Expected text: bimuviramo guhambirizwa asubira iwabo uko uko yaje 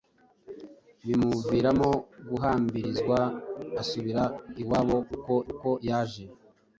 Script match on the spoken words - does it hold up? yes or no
yes